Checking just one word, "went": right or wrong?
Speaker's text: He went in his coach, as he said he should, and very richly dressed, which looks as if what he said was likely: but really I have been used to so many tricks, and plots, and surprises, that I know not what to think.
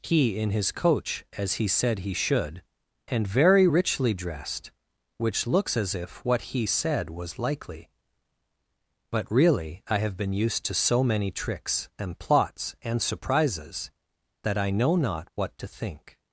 wrong